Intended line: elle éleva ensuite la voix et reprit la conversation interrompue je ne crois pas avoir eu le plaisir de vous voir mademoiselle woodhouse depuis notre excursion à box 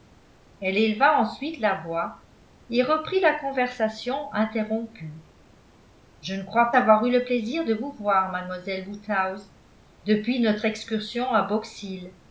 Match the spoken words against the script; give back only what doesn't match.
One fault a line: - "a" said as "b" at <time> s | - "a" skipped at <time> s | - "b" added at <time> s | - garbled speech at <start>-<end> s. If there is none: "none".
- "pas" skipped at 6.7 s